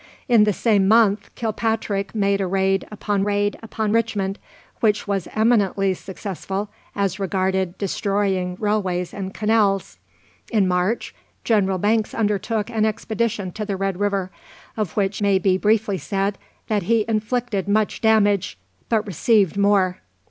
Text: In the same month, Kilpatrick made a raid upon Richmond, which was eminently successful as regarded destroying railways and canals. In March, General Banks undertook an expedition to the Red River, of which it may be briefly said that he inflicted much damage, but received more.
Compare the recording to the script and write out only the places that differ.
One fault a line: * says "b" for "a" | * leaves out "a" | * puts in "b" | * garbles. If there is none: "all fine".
* puts in "raid upon"
* leaves out "it"